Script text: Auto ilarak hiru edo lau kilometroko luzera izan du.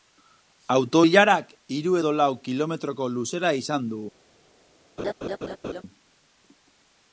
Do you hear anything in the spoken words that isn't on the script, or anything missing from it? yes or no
no